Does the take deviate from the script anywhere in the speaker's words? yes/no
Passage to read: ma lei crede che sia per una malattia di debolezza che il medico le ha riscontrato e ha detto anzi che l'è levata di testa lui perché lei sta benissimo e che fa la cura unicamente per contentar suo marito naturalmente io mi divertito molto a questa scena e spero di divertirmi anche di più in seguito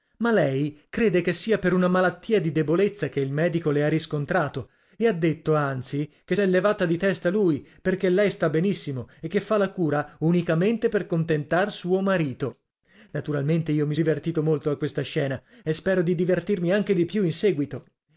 no